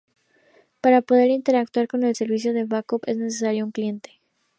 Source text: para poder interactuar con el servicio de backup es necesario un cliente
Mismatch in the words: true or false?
false